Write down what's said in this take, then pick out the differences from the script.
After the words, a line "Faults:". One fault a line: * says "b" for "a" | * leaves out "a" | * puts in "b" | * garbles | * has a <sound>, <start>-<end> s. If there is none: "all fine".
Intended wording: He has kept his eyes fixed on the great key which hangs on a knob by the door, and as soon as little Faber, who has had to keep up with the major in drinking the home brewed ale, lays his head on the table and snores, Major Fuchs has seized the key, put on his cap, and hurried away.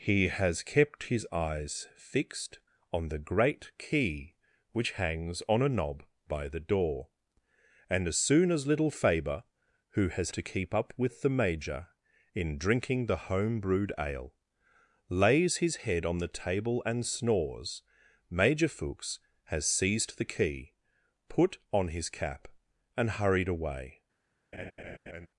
He has kept his eyes fixed on the great key which hangs on a knob by the door, and as soon as little Faber, who has to keep up with the major in drinking the home brewed ale, lays his head on the table and snores, Major Fuchs has seized the key, put on his cap, and hurried away.
Faults:
* leaves out "had"
* has a laugh, 24.5-25.3 s